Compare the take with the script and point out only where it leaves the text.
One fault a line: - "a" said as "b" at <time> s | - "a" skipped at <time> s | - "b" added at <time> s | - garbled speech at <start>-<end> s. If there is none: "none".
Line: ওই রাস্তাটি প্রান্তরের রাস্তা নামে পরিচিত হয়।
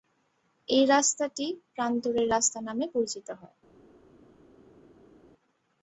- "ওই" said as "এই" at 0.7 s